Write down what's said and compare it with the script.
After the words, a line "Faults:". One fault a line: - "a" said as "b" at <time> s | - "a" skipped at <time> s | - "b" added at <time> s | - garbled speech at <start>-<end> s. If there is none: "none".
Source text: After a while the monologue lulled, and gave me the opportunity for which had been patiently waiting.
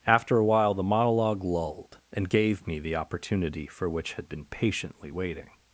After a while the monologue lulled, and gave me the opportunity for which had been patiently waiting.
Faults:
none